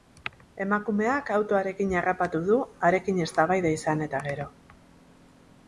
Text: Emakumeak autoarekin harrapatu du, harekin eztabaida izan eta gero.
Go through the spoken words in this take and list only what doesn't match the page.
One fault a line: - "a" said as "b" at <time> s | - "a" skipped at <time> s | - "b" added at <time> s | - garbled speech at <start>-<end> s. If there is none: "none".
none